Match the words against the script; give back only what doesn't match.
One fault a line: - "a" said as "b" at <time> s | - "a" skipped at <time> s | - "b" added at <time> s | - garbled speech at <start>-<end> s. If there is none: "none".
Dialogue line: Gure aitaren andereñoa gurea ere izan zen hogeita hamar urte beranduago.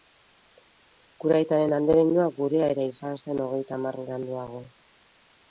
- "urte" skipped at 4.0 s